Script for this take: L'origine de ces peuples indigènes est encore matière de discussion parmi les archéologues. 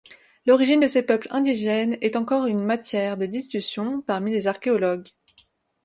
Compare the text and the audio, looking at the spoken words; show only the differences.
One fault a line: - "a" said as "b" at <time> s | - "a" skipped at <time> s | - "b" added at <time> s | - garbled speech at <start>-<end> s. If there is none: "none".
- "une" added at 2.5 s